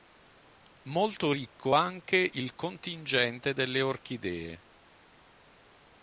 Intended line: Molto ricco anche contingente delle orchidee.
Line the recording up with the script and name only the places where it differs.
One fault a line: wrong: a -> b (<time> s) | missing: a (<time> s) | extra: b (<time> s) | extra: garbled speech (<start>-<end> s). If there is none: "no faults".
extra: il (2.3 s)